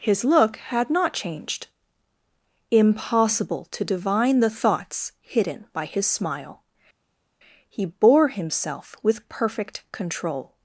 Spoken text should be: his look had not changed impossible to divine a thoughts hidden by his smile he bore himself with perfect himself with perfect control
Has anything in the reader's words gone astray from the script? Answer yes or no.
yes